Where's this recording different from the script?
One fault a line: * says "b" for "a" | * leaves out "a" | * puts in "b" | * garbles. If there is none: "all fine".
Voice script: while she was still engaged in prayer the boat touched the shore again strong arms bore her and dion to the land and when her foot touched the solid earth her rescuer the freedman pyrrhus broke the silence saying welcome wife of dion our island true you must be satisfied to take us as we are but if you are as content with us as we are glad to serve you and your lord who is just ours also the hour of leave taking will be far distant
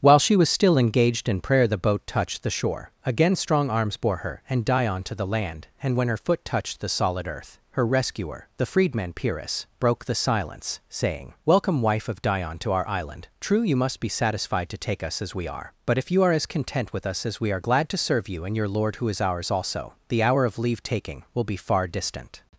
* puts in "to"
* leaves out "just"